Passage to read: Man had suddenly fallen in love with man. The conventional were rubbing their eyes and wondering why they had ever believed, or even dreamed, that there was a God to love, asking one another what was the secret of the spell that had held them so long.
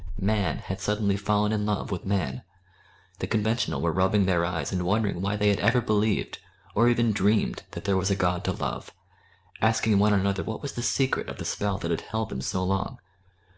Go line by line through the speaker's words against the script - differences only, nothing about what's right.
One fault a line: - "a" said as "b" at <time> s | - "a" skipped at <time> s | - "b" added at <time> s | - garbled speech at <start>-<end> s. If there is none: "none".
none